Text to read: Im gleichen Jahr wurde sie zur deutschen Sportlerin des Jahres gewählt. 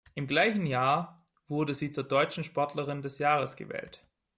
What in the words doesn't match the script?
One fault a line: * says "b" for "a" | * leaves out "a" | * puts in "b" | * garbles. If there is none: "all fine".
all fine